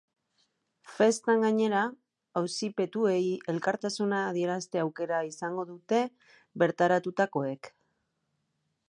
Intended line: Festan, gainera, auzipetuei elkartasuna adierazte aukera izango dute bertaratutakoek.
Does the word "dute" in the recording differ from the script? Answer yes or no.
no